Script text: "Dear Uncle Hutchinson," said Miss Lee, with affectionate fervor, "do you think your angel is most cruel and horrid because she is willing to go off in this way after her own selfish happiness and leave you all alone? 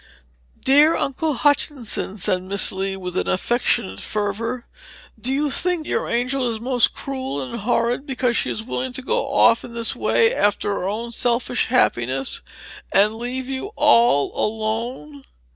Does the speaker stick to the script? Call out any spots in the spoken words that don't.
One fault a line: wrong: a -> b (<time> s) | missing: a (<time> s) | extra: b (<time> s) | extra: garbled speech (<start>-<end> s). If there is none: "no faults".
no faults